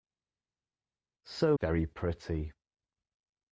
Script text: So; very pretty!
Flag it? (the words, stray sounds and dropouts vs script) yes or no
no